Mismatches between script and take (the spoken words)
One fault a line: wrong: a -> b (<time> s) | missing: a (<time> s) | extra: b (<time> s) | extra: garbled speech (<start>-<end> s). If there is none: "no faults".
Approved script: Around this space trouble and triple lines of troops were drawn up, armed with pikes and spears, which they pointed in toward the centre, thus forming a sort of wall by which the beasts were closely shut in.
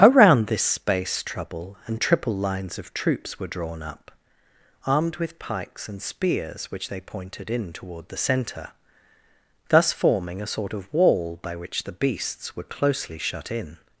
no faults